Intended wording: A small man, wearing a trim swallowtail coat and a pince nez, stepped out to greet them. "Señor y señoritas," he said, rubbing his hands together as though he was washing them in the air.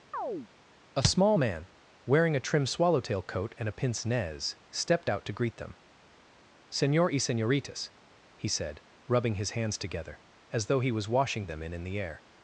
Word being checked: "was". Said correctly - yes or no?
yes